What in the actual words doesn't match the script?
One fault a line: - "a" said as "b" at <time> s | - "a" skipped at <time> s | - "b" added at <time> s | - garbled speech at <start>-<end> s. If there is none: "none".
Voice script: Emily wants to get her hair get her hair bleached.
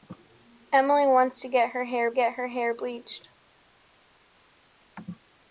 none